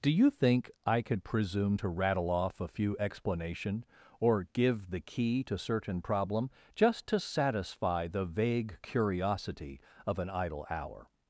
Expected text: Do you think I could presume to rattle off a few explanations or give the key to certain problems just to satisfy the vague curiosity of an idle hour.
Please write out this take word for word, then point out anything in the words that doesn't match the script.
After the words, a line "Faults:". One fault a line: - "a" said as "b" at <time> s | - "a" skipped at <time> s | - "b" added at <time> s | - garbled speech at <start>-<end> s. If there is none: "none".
Do you think I could presume to rattle off a few explanation or give the key to certain problem just to satisfy the vague curiosity of an idle hour.
Faults:
- "explanations" said as "explanation" at 3.0 s
- "problems" said as "problem" at 6.0 s